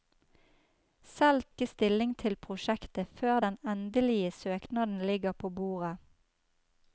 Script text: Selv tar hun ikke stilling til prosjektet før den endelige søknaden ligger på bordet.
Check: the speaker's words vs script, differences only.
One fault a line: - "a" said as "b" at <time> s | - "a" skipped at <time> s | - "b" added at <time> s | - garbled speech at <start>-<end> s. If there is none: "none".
- "tar hun" skipped at 1.4 s